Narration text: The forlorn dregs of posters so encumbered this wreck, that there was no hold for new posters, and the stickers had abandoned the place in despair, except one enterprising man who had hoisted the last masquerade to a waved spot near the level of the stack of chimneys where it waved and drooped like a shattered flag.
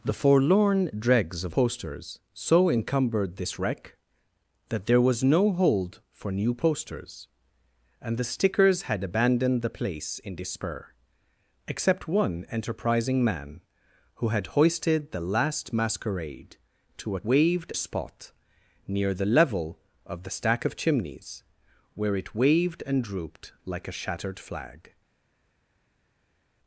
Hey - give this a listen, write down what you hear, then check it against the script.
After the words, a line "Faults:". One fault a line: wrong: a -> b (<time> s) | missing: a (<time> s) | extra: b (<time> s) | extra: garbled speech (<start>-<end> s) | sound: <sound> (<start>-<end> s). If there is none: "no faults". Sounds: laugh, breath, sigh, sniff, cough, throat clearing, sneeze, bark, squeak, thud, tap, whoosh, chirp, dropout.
The forlorn dregs of posters so encumbered this wreck, that there was no hold for new posters, and the stickers had abandoned the place in despair, except one enterprising man who had hoisted the last masquerade to a waved spot near the level of the stack of chimneys where it waved and drooped like a shattered flag.
Faults:
no faults